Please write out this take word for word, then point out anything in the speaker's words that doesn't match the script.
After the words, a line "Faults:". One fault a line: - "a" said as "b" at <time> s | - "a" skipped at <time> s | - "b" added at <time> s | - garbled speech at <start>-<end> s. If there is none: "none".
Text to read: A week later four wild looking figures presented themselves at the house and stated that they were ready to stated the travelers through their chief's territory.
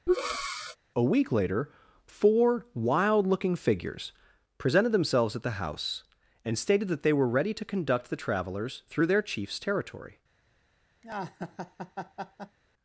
A week later four wild looking figures presented themselves at the house and stated that they were ready to conduct the travelers through their chief's territory.
Faults:
- "stated" said as "conduct" at 7.6 s